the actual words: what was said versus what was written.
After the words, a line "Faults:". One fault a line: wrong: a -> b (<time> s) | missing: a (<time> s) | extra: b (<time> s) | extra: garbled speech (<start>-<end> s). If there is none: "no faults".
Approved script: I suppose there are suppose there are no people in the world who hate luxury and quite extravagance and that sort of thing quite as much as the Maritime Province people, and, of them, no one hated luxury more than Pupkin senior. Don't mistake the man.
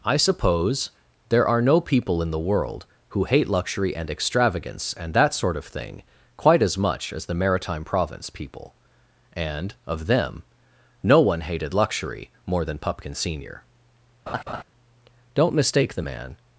I suppose there are no people in the world who hate luxury and extravagance and that sort of thing quite as much as the Maritime Province people, and, of them, no one hated luxury more than Pupkin senior. Don't mistake the man.
Faults:
missing: suppose there are (1.6 s)
missing: quite (4.1 s)